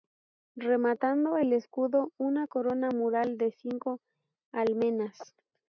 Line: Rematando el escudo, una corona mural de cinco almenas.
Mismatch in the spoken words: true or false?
false